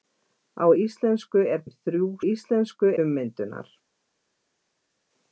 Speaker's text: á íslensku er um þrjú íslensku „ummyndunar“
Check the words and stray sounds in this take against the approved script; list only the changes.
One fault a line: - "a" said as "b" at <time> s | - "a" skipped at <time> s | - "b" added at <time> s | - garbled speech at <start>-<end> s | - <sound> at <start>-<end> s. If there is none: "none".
none